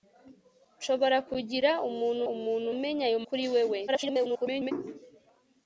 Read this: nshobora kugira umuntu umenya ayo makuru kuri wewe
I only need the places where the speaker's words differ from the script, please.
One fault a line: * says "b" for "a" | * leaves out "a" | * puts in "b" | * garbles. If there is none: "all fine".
* puts in "umuntu"
* leaves out "makuru"
* garbles